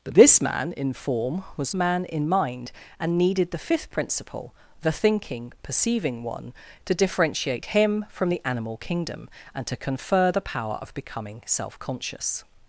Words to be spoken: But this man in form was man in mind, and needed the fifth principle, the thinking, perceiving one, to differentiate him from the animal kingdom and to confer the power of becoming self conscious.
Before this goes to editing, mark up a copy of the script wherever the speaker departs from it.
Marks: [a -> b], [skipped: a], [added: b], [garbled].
But this man in form was man in mind, and needed the fifth principle, the thinking, perceiving one, to differentiate him from the animal kingdom and to confer the power of becoming self conscious.